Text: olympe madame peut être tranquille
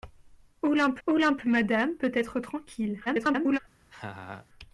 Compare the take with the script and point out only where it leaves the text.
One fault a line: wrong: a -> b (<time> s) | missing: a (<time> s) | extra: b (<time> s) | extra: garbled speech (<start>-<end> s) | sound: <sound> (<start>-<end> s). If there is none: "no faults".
extra: olympe (1.1 s)
extra: garbled speech (3.1-3.6 s)
sound: laugh (3.9-4.5 s)